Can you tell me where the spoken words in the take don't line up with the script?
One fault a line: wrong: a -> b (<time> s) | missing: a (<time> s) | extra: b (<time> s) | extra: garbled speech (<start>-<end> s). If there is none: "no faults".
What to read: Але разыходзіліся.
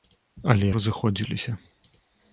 no faults